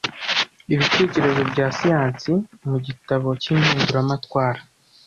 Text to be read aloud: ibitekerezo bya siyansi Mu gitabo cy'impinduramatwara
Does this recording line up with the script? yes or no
yes